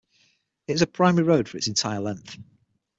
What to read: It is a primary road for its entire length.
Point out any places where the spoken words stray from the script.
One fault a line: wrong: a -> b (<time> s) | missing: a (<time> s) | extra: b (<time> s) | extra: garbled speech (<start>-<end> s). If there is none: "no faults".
no faults